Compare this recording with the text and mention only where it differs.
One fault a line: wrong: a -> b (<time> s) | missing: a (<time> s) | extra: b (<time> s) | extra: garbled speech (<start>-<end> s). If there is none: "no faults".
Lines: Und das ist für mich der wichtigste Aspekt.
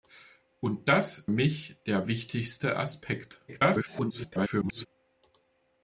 missing: ist für (1.3 s)
extra: garbled speech (3.5-4.9 s)